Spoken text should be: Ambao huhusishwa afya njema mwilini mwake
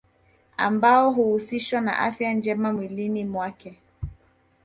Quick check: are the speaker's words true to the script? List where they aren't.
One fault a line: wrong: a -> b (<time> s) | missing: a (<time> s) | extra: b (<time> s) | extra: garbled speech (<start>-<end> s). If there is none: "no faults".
extra: na (1.8 s)